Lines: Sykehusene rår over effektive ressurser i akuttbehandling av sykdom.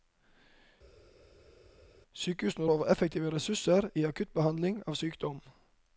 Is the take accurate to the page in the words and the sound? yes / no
no